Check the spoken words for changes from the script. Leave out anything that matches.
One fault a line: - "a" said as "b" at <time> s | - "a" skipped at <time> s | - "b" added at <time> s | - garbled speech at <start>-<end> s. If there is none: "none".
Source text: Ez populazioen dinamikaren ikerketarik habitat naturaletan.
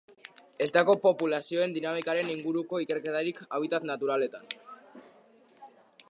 - "dago" added at 0.7 s
- "inguruko" added at 2.3 s